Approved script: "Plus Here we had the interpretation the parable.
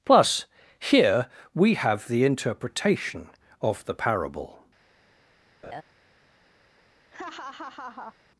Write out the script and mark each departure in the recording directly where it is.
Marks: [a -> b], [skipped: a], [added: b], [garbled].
"Plus Here we [had -> have] the interpretation [added: of] the parable.